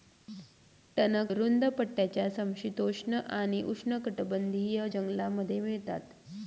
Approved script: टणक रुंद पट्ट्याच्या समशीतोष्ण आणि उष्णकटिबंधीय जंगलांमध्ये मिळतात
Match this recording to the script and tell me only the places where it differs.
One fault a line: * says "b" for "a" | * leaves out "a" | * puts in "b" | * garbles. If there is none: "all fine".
all fine